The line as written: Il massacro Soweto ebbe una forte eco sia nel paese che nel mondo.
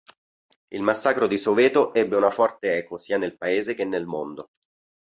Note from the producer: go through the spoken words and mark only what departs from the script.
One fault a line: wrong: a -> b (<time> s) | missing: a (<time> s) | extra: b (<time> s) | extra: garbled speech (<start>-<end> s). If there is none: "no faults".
extra: di (1.3 s)